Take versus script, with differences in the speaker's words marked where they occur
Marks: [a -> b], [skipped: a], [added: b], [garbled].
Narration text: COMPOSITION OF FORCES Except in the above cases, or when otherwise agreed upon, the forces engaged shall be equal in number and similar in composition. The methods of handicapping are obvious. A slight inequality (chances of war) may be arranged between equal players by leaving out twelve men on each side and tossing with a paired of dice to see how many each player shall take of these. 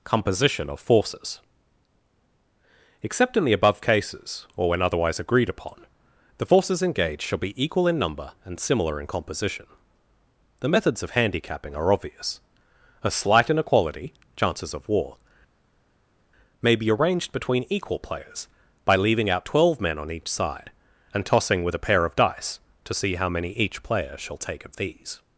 COMPOSITION OF FORCES Except in the above cases, or when otherwise agreed upon, the forces engaged shall be equal in number and similar in composition. The methods of handicapping are obvious. A slight inequality (chances of war) may be arranged between equal players by leaving out twelve men on each side and tossing with a [paired -> pair] of dice to see how many each player shall take of these.